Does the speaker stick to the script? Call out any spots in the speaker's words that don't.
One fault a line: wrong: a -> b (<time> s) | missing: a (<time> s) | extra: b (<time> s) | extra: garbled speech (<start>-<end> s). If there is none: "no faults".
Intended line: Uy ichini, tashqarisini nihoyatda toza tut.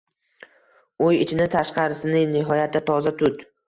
no faults